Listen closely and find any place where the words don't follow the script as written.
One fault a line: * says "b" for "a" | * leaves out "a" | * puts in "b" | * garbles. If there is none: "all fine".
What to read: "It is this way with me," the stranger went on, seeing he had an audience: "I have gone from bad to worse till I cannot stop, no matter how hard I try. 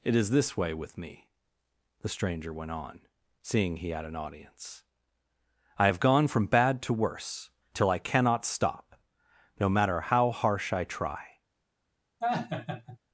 * says "harsh" for "hard"